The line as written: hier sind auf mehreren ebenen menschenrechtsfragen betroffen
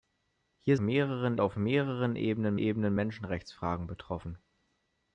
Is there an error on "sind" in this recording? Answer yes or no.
yes